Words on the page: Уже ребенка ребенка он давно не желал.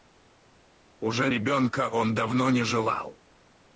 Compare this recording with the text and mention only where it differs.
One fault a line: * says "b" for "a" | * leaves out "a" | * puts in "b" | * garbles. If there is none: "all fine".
* leaves out "ребенка"